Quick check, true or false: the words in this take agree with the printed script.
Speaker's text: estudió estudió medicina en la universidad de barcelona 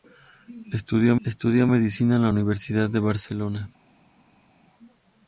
true